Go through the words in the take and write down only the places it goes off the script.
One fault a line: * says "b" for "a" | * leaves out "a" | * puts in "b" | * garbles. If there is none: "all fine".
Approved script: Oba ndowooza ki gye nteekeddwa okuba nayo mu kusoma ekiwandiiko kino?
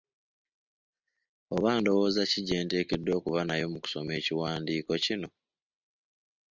all fine